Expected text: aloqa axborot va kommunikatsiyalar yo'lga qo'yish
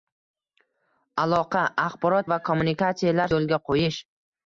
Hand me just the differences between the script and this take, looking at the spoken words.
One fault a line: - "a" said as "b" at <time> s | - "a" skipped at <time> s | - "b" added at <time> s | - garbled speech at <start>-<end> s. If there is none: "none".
none